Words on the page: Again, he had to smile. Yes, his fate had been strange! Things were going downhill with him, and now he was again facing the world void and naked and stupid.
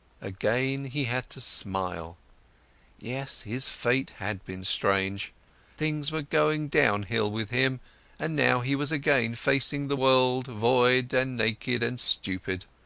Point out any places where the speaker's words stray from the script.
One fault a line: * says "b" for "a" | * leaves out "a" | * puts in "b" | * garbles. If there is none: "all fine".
all fine